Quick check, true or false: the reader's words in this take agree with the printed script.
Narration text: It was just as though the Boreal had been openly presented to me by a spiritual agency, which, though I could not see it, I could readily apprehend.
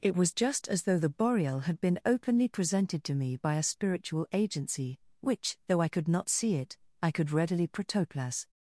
false